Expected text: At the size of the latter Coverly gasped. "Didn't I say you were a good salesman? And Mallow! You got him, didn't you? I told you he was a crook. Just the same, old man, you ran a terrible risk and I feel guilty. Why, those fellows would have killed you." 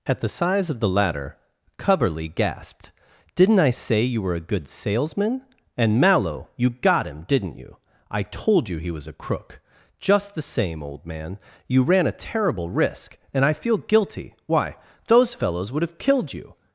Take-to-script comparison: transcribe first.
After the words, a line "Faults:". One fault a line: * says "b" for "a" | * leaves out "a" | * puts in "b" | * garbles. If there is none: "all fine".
At the size of the latter Coverly gasped. "Didn't I say you were a good salesman? And Mallow! You got him, didn't you? I told you he was a crook. Just the same, old man, you ran a terrible risk and I feel guilty. Why, those fellows would have killed you."
Faults:
all fine